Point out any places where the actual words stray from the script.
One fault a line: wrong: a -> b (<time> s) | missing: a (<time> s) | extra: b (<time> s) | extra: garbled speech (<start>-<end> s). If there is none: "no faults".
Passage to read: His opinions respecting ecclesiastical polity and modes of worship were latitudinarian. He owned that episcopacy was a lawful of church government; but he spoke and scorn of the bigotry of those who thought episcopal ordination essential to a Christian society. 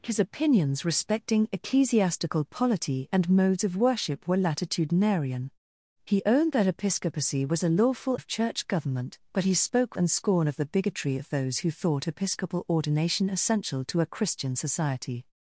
no faults